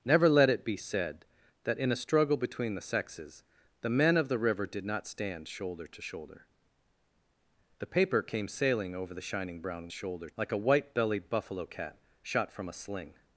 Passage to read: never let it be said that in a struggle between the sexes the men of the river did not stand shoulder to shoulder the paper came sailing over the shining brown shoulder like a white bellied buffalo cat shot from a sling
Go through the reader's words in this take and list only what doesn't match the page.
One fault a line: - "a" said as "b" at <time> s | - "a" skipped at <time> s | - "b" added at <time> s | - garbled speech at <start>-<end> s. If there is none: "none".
none